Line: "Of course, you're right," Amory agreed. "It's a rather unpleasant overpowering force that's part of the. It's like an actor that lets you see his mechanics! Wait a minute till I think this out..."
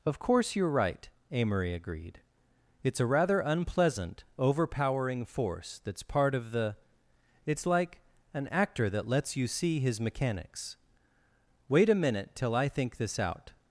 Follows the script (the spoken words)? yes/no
yes